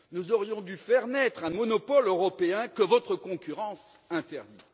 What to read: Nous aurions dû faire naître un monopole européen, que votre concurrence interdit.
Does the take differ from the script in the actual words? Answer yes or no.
no